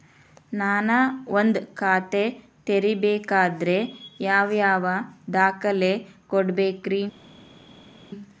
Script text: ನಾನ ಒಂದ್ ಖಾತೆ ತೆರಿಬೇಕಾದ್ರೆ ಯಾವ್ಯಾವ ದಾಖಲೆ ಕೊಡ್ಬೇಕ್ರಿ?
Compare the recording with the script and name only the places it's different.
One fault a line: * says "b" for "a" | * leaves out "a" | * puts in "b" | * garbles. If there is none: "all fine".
all fine